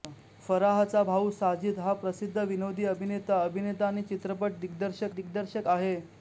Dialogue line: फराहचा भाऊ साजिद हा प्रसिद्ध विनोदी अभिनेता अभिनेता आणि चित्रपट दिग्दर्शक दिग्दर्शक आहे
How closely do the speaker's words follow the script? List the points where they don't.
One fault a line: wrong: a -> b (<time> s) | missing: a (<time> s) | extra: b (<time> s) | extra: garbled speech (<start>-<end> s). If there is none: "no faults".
no faults